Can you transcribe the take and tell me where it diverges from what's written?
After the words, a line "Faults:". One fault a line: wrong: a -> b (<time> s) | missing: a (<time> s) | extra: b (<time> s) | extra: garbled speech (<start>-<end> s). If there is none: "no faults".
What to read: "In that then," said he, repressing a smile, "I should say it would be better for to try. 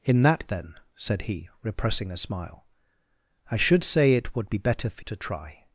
"In that then," said he, repressing a smile, "I should say it would be better for to try.
Faults:
no faults